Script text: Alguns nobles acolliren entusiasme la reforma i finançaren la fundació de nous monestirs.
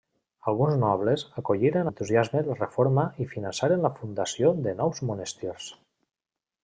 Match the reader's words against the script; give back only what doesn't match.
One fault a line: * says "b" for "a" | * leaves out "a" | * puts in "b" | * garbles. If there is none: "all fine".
all fine